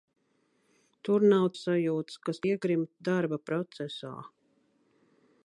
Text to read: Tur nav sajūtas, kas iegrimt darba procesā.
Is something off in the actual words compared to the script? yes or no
no